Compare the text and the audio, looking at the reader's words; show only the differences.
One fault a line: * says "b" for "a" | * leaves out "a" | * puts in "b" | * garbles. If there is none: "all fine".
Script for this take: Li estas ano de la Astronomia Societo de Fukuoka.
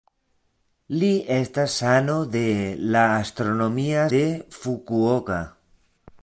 * leaves out "Societo"